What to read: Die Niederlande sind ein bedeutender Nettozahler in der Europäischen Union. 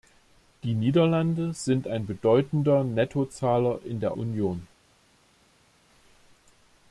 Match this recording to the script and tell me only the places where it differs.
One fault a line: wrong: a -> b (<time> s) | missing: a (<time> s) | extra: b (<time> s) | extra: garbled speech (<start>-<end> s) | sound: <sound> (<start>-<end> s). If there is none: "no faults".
missing: Europäischen (4.2 s)